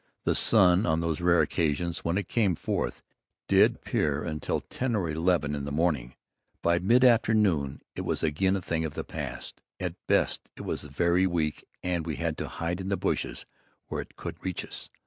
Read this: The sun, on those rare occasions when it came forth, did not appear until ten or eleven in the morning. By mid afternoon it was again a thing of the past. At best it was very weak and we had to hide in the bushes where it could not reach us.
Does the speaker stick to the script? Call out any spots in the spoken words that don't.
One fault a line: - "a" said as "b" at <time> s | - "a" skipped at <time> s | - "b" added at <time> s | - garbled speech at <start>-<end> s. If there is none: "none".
- "not" skipped at 3.8 s
- "not" skipped at 14.4 s